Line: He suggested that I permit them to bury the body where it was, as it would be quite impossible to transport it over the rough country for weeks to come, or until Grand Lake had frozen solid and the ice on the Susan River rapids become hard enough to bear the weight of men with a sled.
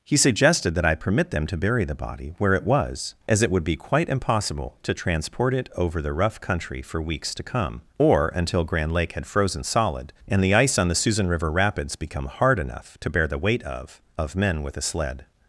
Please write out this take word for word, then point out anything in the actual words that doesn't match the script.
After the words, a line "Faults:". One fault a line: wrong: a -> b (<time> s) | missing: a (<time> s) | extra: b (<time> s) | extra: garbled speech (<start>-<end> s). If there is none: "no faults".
He suggested that I permit them to bury the body where it was, as it would be quite impossible to transport it over the rough country for weeks to come, or until Grand Lake had frozen solid and the ice on the Susan River rapids become hard enough to bear the weight of of men with a sled.
Faults:
extra: of (14.2 s)